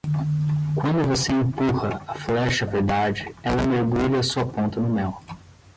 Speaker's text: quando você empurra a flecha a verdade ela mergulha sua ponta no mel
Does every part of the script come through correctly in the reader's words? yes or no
yes